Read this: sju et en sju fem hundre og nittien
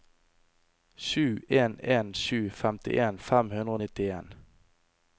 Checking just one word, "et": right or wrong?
wrong